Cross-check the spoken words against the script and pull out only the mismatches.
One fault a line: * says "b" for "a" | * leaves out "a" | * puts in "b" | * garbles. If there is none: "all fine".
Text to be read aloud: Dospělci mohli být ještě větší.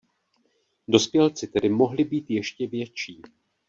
* puts in "tedy"